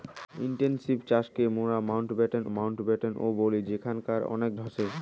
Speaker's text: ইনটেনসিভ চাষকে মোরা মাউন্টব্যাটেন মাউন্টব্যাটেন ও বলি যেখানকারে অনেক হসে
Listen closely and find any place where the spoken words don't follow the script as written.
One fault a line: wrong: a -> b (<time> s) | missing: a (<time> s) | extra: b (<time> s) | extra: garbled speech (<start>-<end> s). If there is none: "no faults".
no faults